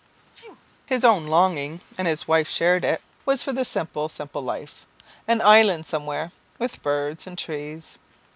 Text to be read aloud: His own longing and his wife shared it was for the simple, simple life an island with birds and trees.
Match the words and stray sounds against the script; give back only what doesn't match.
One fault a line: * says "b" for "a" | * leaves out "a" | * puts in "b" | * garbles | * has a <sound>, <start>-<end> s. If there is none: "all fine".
* has a sneeze, 0.3-0.6 s
* puts in "somewhere"